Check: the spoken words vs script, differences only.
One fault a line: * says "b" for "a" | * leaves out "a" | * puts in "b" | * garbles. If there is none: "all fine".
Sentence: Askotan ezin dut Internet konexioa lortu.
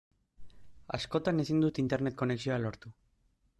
all fine